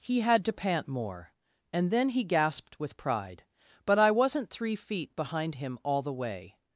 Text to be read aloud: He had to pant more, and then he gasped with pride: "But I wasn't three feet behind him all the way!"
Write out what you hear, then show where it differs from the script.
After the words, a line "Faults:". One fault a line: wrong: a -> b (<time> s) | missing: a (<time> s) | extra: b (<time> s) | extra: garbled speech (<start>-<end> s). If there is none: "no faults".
He had to pant more, and then he gasped with pride: "But I wasn't three feet behind him all the way!"
Faults:
no faults